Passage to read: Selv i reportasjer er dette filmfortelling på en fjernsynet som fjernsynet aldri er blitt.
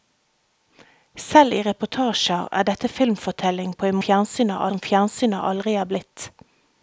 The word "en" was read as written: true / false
true